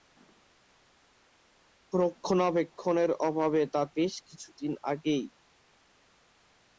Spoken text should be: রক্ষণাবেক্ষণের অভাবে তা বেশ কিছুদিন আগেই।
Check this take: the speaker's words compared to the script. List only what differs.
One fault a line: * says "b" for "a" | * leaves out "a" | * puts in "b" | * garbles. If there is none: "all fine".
all fine